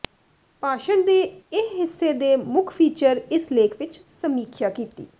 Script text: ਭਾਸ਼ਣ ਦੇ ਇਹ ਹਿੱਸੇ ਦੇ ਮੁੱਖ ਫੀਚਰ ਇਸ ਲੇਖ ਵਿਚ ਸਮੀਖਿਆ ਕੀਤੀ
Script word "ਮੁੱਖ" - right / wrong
right